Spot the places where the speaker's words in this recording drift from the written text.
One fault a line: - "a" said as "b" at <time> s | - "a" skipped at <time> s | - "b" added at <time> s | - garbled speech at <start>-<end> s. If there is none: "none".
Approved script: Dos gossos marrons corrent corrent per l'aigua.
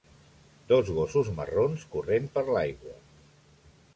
- "corrent" skipped at 2.3 s